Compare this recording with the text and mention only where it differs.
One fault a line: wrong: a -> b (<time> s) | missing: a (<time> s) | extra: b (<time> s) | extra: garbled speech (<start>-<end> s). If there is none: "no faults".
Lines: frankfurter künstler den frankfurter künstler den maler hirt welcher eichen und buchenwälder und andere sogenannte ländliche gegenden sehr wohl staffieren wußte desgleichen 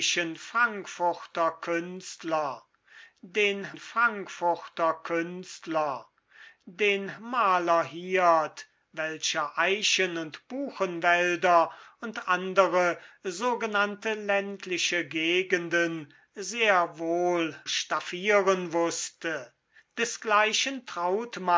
no faults